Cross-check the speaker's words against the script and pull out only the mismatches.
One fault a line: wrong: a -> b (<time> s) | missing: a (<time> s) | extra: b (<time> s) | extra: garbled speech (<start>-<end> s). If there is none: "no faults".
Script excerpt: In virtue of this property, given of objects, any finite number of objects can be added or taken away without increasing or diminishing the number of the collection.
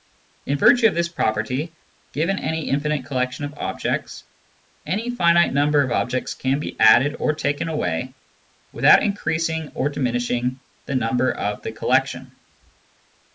extra: any infinite collection (2.4 s)